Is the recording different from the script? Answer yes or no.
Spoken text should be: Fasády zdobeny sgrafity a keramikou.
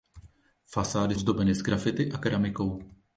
no